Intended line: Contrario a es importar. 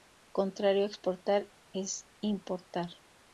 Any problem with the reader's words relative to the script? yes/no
yes